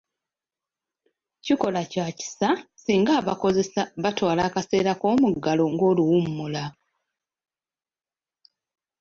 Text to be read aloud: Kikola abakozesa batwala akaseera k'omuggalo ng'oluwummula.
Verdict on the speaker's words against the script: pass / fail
fail